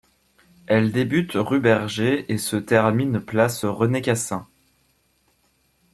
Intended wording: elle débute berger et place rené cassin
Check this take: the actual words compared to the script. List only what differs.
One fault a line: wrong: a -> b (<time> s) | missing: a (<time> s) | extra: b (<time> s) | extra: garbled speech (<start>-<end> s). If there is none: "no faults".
extra: rue (1.3 s)
extra: se termine (2.4 s)